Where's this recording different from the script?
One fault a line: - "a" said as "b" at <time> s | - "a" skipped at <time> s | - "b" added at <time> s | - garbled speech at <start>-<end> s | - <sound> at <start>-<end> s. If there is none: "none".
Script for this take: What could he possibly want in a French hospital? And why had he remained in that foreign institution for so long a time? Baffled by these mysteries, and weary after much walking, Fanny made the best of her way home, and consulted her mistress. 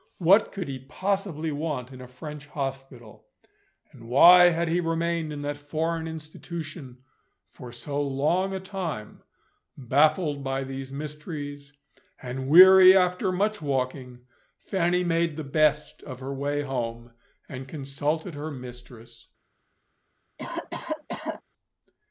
- cough at 20.4-21.4 s